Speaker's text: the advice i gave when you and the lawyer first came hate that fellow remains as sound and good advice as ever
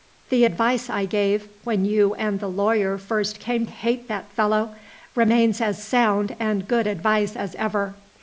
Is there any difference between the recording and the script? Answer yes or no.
no